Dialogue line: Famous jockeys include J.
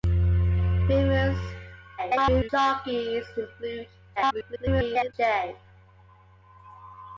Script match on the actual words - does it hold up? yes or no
no